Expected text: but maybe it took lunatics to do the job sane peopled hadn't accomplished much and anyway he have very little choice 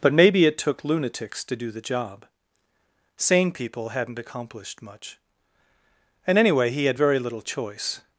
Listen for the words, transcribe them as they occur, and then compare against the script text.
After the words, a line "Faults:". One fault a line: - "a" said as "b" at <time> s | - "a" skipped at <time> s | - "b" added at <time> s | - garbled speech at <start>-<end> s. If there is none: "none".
but maybe it took lunatics to do the job sane people hadn't accomplished much and anyway he had very little choice
Faults:
- "peopled" said as "people" at 3.5 s
- "have" said as "had" at 6.8 s